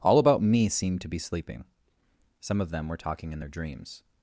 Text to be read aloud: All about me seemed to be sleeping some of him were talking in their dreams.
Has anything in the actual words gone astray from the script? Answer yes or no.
yes